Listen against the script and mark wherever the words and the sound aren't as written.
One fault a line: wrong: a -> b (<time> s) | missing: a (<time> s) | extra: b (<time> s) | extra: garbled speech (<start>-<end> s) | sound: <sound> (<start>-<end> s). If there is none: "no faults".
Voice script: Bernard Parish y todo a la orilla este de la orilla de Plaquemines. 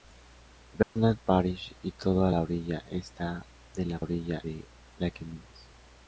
sound: dropout (0.8-1.0 s)